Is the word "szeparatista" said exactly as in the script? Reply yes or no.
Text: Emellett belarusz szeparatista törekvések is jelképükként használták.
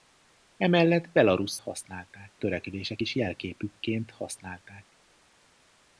no